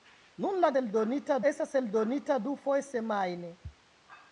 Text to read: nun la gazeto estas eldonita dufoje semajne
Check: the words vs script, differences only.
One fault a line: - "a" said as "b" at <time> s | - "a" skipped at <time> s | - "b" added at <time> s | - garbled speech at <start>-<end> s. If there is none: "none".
- "gazeto" said as "eldonita" at 0.8 s